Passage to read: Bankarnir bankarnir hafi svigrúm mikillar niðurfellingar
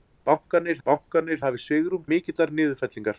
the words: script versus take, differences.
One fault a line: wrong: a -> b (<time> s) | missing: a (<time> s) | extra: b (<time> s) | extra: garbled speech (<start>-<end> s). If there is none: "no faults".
no faults